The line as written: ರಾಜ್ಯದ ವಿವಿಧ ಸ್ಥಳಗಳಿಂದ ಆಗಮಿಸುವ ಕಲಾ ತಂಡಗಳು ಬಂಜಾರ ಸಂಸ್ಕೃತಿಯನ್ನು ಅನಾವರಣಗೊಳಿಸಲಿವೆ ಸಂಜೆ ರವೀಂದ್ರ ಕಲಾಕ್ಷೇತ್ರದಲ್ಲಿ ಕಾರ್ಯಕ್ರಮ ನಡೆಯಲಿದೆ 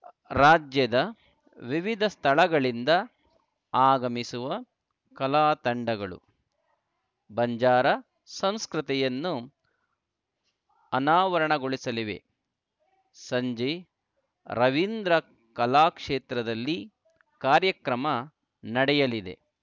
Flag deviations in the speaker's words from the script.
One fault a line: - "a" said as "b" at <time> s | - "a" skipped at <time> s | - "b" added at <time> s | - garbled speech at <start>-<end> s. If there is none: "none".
none